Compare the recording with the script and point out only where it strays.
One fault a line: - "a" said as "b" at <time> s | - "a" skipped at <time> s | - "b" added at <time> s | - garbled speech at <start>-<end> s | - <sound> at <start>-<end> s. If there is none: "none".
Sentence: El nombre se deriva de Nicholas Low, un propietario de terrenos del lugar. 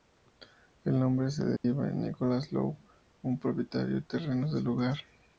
- dropout at 1.6-1.6 s